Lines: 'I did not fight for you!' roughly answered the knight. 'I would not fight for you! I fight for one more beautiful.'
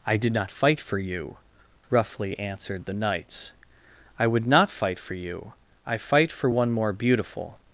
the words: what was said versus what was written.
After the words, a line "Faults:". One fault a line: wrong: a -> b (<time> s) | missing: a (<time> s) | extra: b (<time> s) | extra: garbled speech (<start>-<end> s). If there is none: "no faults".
'I did not fight for you!' roughly answered the knights. 'I would not fight for you! I fight for one more beautiful.'
Faults:
wrong: knight -> knights (2.9 s)